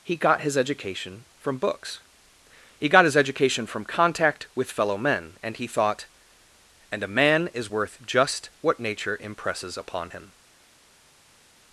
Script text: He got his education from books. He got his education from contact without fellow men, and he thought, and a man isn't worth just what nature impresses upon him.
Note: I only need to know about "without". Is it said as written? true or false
false